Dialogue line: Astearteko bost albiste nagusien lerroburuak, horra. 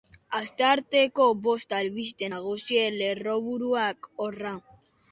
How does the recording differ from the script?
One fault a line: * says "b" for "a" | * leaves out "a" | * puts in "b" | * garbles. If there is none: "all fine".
all fine